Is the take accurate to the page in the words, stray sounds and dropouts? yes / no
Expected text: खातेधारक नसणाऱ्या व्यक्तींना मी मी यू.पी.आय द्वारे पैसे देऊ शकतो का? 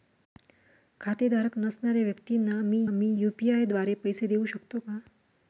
yes